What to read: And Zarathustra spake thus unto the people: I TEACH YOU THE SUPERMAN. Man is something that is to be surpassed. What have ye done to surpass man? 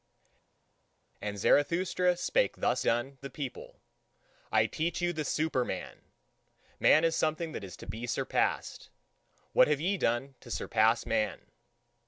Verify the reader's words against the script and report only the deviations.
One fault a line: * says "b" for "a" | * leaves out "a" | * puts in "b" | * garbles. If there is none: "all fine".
* says "done" for "unto"